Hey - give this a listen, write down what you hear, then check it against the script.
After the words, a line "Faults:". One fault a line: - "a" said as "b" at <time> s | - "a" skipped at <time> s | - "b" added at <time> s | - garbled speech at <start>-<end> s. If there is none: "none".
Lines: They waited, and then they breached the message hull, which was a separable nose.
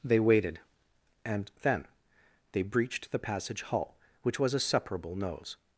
They waited, and then they breached the passage hull, which was a separable nose.
Faults:
- "message" said as "passage" at 3.2 s